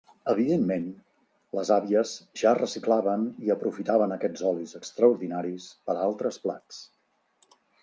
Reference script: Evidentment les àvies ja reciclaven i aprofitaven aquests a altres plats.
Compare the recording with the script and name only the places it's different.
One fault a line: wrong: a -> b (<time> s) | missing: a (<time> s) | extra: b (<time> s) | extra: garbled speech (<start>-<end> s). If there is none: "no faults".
extra: olis extraordinaris per (4.5 s)